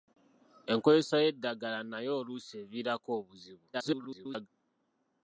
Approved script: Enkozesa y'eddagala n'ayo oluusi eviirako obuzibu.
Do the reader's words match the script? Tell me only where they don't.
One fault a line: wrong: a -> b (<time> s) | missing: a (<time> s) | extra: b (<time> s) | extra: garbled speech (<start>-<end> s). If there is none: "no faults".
extra: garbled speech (3.7-4.5 s)